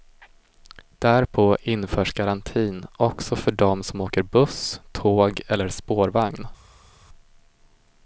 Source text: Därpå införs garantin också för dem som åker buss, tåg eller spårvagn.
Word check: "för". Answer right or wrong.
right